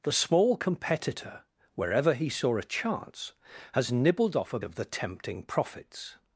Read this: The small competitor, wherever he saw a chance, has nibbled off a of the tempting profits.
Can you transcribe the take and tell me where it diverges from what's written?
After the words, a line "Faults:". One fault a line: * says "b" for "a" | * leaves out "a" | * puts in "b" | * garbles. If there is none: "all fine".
The small competitor, wherever he saw a chance, has nibbled off a of the tempting profits.
Faults:
all fine